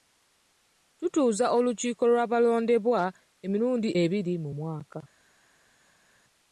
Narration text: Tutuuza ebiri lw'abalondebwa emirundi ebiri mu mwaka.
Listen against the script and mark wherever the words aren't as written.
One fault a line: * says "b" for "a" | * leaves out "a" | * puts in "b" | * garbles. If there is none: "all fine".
* says "olukiiko" for "ebiri"